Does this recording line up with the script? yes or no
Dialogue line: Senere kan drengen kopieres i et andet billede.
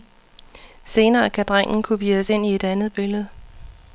no